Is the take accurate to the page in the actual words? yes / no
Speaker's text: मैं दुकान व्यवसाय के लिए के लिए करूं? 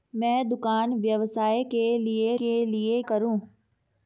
yes